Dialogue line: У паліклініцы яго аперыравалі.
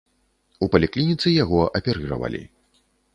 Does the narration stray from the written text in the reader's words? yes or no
no